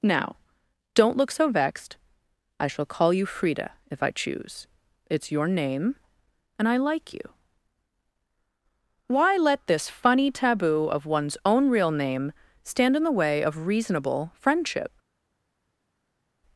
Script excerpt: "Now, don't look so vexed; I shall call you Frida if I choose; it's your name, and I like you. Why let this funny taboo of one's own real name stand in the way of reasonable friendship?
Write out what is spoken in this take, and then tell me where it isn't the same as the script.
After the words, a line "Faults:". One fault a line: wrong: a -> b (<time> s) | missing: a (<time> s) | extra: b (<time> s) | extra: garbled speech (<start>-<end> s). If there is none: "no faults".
"Now, don't look so vexed; I shall call you Frida if I choose; it's your name, and I like you. Why let this funny taboo of one's own real name stand in the way of reasonable friendship?
Faults:
no faults